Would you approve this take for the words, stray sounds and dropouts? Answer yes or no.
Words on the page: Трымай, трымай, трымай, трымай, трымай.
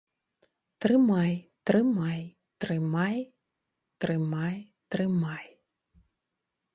yes